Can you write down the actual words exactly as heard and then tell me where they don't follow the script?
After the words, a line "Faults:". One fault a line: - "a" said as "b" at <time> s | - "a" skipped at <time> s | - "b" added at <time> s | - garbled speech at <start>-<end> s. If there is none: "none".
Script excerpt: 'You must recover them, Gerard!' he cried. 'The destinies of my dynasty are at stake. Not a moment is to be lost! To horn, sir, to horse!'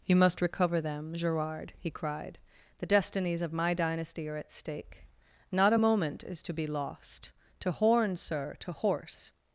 'You must recover them, Gerard!' he cried. 'The destinies of my dynasty are at stake. Not a moment is to be lost! To horn, sir, to horse!'
Faults:
none